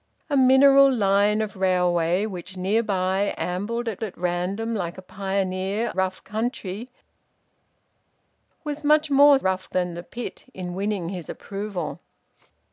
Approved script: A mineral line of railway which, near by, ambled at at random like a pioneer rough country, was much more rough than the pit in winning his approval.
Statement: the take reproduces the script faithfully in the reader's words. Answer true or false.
true